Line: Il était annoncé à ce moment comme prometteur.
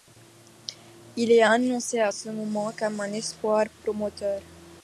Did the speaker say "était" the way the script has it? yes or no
no